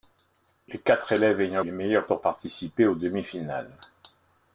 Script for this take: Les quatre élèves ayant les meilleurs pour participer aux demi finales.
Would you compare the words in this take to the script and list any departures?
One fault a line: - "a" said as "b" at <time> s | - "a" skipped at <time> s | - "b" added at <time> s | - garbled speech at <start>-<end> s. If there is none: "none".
none